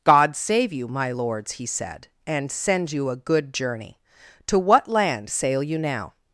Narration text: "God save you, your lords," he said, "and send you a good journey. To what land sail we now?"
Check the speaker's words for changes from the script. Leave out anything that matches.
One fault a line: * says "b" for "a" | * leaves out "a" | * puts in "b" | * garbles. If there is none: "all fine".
* says "my" for "your"
* says "you" for "we"